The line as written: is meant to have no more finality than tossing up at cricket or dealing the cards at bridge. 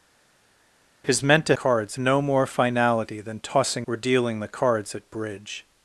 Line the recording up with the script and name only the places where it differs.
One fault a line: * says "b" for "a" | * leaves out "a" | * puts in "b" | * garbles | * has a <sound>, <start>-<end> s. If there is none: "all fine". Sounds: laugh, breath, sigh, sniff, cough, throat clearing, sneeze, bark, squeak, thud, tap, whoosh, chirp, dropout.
* says "cards" for "have"
* leaves out "up at cricket"